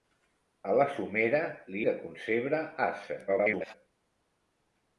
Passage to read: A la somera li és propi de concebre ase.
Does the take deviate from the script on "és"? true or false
true